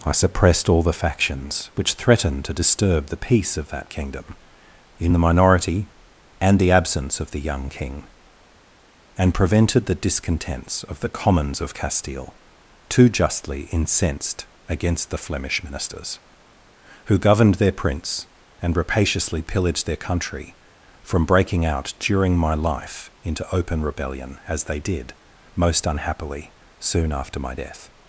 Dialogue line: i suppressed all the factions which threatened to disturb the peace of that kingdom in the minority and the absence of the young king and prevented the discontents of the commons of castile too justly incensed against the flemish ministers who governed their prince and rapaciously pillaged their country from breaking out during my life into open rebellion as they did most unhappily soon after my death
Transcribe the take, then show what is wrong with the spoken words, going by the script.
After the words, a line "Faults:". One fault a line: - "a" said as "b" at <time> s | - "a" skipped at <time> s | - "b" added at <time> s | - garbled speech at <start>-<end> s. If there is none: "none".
i suppressed all the factions which threatened to disturb the peace of that kingdom in the minority and the absence of the young king and prevented the discontents of the commons of castile too justly incensed against the flemish ministers who governed their prince and rapaciously pillaged their country from breaking out during my life into open rebellion as they did most unhappily soon after my death
Faults:
none